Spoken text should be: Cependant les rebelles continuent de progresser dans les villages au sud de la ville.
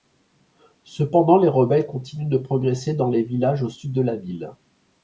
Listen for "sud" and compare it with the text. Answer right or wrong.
right